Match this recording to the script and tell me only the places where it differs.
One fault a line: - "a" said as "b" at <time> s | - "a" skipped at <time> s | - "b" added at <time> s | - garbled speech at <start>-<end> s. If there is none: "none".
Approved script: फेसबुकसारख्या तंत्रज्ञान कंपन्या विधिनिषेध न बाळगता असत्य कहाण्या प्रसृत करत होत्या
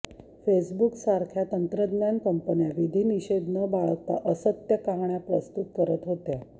none